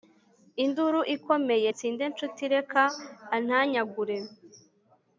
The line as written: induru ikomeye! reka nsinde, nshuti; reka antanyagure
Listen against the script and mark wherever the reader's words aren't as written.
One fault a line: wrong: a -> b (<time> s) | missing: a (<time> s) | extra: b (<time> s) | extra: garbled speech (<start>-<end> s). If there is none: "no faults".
missing: reka (1.7 s)